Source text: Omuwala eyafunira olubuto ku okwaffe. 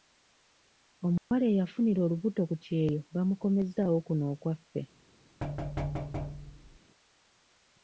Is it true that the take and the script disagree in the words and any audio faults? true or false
true